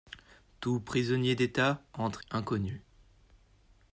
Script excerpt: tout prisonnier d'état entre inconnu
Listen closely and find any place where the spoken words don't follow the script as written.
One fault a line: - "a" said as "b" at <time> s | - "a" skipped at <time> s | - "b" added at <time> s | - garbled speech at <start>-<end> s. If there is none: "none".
none